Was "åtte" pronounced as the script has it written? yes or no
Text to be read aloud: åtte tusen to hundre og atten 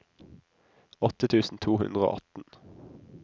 yes